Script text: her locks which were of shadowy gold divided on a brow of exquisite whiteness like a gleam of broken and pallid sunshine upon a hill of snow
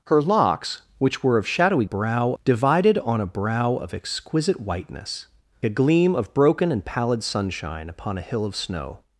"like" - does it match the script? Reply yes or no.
no